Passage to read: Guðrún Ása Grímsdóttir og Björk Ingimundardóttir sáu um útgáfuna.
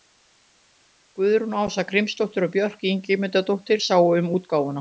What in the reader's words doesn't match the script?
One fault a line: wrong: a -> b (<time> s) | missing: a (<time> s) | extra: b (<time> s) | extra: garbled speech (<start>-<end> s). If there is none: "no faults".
no faults